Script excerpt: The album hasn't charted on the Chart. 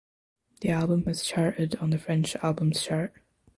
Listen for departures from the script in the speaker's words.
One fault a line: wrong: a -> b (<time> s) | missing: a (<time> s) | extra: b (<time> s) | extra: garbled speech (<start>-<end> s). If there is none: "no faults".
wrong: hasn't -> has (1.1 s)
extra: French Albums (2.0 s)